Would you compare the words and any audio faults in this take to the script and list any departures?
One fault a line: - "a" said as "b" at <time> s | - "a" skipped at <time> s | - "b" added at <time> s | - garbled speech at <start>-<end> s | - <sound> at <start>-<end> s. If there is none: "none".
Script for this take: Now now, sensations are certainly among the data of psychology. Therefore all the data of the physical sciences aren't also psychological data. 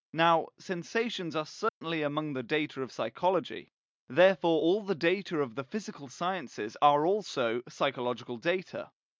- "now" skipped at 0.5 s
- dropout at 1.7-1.8 s
- "aren't" said as "are" at 6.8 s